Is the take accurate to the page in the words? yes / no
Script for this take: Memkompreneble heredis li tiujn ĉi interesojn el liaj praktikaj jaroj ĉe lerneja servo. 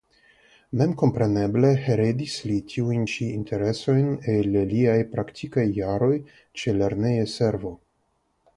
yes